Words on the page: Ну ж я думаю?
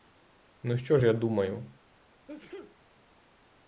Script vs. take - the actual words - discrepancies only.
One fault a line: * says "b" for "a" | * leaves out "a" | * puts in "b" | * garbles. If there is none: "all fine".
* puts in "що"